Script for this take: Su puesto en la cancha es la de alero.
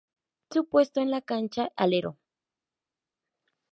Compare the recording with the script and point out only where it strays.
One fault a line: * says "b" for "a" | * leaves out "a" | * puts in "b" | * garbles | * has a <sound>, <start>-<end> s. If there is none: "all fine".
* leaves out "es la de"